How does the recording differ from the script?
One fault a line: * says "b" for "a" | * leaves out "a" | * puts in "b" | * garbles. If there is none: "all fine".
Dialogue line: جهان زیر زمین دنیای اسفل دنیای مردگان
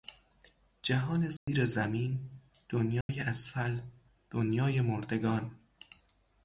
all fine